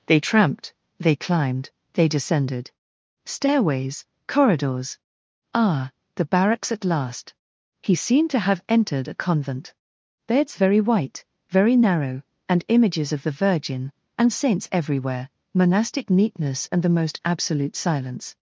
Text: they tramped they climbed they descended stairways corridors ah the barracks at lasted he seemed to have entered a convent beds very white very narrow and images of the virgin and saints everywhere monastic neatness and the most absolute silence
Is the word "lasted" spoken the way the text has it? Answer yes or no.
no